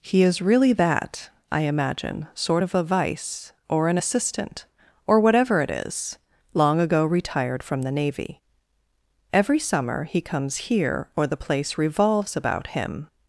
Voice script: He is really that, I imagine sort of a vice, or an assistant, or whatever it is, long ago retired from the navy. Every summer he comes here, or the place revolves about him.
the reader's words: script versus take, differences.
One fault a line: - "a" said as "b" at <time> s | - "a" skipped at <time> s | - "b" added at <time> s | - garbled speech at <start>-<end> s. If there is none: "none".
none